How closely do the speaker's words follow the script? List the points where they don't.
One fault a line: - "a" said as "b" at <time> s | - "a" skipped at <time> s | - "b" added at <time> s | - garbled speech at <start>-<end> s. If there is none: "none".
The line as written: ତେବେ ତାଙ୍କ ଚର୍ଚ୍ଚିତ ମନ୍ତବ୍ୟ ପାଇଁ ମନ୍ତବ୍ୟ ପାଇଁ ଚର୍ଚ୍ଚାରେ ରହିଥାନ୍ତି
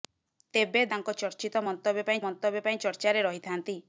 none